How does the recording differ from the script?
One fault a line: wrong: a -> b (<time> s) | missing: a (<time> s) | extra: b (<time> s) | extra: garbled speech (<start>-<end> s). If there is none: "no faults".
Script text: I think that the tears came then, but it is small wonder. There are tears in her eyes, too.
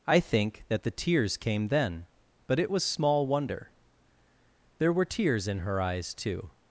wrong: is -> was (2.7 s)
wrong: are -> were (4.9 s)